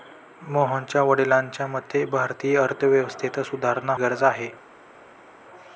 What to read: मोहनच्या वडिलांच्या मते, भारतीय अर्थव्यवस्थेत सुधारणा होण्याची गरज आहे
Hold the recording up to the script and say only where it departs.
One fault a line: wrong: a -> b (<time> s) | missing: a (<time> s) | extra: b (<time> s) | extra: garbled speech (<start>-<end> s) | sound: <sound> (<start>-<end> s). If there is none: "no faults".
missing: होण्याची (3.9 s)